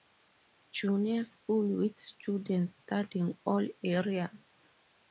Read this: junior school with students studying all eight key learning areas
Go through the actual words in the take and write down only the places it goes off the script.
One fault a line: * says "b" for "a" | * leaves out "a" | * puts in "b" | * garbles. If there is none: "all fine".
* leaves out "eight key learning"